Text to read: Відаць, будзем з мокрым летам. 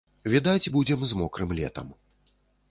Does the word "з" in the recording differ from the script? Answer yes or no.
no